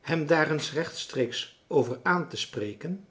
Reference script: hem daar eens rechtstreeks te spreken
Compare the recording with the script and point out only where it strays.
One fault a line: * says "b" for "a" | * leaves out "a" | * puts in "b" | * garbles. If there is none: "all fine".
* puts in "over aan"